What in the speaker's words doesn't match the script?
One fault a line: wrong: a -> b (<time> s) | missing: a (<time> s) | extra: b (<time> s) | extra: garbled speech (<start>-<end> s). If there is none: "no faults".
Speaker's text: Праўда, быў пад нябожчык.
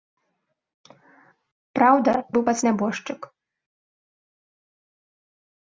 no faults